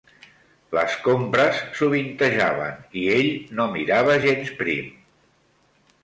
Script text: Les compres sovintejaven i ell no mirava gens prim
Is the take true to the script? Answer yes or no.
yes